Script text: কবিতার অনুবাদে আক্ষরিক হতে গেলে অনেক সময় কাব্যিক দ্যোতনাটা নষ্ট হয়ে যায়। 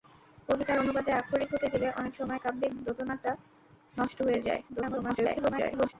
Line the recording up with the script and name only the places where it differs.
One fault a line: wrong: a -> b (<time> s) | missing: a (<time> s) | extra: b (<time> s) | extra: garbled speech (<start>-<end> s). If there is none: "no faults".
extra: garbled speech (4.7-5.9 s)